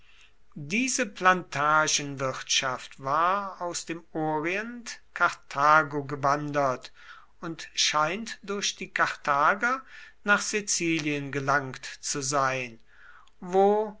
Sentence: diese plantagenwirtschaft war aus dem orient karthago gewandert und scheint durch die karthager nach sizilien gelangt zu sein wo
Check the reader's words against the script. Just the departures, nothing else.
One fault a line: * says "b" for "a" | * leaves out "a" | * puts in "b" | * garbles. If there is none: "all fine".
all fine